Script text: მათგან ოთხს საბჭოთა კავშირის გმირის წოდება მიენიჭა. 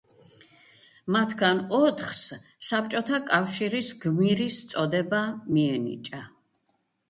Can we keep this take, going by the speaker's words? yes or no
yes